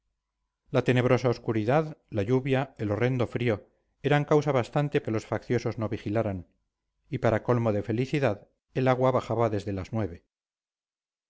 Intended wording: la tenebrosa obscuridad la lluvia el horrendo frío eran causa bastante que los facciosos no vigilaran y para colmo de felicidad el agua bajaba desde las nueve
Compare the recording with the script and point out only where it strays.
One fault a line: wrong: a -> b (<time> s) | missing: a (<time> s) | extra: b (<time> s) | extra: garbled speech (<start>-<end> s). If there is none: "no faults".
no faults